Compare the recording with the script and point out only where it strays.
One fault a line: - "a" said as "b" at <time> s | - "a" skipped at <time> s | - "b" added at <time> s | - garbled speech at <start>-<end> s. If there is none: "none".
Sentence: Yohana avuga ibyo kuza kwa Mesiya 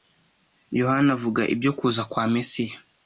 none